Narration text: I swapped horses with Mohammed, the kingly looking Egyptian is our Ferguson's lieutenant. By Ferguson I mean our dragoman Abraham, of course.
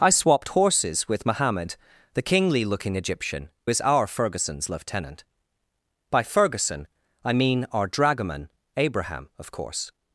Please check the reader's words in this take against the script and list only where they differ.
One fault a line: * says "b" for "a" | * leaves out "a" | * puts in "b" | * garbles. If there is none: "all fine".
all fine